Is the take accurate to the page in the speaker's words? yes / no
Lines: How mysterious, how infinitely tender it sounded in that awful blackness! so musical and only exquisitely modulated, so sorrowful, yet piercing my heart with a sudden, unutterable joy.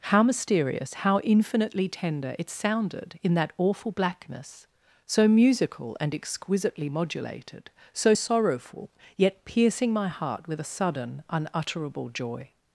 no